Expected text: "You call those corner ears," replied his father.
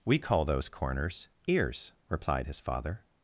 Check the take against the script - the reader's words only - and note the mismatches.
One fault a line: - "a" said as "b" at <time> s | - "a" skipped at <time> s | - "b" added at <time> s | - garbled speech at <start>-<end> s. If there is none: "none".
- "You" said as "We" at 0.0 s
- "corner" said as "corners" at 0.7 s